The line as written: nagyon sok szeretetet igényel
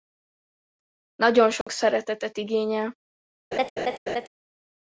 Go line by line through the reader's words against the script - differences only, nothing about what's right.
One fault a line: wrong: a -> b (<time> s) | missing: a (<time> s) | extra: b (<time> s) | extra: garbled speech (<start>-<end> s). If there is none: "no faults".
no faults